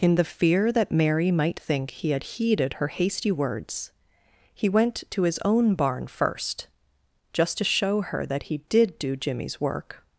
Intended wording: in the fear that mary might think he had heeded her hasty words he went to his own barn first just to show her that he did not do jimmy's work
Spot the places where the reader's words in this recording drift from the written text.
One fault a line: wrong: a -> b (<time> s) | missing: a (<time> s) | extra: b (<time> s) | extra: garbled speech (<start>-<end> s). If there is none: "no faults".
missing: not (9.0 s)